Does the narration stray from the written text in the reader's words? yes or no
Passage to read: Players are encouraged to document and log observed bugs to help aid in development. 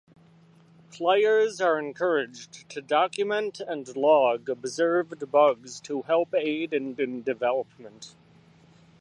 yes